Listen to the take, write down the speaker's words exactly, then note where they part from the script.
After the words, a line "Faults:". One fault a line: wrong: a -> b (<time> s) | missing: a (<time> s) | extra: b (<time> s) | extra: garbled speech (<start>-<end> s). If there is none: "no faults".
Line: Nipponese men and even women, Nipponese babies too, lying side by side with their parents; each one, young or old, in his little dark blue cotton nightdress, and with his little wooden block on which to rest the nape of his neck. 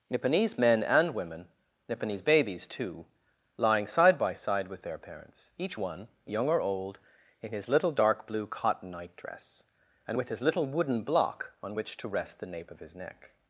Nipponese men and women, Nipponese babies too, lying side by side with their parents; each one, young or old, in his little dark blue cotton nightdress, and with his little wooden block on which to rest the nape of his neck.
Faults:
missing: even (1.1 s)